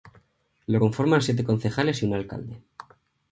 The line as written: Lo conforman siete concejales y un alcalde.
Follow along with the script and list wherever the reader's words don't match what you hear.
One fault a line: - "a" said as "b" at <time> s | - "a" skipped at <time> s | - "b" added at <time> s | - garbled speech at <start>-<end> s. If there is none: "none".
none